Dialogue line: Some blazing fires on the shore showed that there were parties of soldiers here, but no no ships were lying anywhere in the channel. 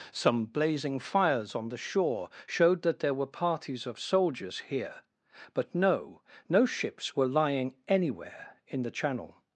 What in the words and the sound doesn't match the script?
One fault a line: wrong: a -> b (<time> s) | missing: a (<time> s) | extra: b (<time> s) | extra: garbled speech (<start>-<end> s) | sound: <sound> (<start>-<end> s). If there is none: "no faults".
no faults